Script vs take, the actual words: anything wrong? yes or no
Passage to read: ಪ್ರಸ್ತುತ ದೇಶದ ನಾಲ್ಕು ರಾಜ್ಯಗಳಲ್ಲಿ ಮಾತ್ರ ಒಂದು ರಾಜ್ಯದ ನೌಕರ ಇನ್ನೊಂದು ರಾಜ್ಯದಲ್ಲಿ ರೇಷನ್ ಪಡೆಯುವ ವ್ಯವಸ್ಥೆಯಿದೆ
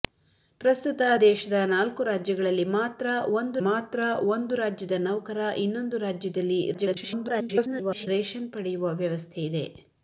yes